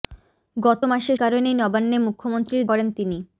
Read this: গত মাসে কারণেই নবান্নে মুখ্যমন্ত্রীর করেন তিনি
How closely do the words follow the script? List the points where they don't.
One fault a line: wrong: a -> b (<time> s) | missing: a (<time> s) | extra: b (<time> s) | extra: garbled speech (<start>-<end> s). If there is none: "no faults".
no faults